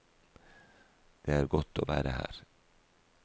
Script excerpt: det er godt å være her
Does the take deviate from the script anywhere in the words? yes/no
no